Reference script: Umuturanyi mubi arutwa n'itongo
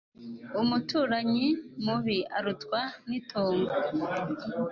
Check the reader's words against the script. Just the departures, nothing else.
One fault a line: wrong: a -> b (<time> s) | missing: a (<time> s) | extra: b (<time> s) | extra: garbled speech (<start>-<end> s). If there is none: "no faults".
no faults